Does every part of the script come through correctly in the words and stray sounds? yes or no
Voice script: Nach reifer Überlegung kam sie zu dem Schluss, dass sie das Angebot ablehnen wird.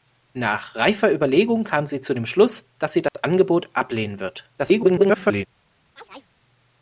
no